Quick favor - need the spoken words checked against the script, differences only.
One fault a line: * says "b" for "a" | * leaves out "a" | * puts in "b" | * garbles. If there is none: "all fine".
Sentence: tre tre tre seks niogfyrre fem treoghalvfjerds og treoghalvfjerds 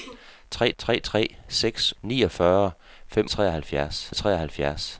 all fine